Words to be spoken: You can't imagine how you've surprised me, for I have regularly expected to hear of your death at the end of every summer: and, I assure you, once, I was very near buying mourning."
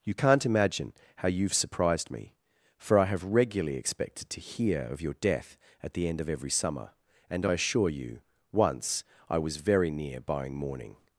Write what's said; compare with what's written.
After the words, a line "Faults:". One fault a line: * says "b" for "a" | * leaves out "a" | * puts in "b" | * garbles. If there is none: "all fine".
You can't imagine how you've surprised me, for I have regularly expected to hear of your death at the end of every summer: and, I assure you, once, I was very near buying mourning."
Faults:
all fine